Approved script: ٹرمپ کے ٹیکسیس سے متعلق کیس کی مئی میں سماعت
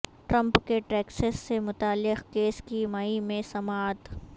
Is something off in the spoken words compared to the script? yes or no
no